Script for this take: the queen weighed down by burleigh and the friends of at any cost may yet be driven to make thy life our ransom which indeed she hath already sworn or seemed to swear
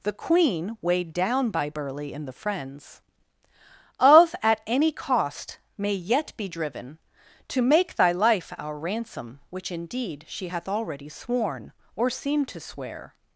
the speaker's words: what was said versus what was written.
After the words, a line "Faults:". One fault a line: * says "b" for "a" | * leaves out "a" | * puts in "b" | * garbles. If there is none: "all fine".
the queen weighed down by burleigh and the friends of at any cost may yet be driven to make thy life our ransom which indeed she hath already sworn or seemed to swear
Faults:
all fine